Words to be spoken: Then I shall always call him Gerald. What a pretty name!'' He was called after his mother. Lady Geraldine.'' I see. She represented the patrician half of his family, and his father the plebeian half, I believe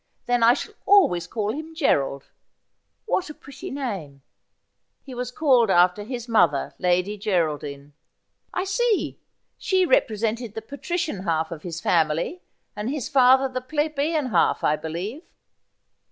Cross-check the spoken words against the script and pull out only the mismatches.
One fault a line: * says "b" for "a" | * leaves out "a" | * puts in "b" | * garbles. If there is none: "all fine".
all fine